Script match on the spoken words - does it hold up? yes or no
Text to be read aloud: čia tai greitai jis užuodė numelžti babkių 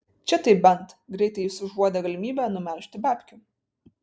no